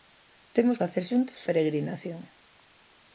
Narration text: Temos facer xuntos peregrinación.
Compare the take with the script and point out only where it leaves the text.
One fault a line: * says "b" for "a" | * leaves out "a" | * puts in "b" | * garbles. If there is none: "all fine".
all fine